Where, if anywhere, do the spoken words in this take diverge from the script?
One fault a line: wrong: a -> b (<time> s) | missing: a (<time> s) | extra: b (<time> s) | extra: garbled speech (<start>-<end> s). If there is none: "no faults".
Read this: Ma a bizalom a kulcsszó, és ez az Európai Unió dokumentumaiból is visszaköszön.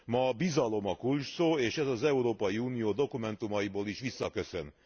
no faults